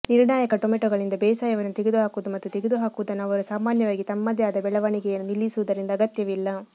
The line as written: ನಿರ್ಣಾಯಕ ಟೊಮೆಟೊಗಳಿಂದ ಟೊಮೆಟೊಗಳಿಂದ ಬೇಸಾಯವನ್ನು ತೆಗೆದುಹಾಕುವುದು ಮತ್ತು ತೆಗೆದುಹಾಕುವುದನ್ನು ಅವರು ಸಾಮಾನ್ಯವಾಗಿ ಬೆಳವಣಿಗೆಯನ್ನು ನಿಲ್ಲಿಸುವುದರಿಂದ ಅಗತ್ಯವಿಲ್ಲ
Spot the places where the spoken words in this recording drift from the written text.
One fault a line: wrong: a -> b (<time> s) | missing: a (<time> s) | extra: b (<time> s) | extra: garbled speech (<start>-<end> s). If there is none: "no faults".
missing: ಟೊಮೆಟೊಗಳಿಂದ (1.2 s)
extra: ತಮ್ಮದೇ ಆದ (4.0 s)